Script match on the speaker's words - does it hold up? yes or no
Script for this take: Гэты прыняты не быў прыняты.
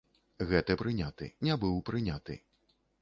yes